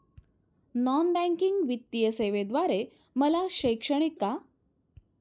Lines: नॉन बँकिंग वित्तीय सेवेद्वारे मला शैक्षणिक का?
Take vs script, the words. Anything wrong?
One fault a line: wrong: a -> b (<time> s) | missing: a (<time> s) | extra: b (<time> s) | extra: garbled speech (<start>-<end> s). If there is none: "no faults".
no faults